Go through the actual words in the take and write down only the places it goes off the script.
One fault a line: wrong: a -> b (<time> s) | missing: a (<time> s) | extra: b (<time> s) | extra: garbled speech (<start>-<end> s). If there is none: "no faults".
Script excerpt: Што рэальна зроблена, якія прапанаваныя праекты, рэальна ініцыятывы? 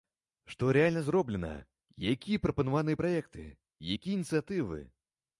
wrong: рэальна -> якія (4.0 s)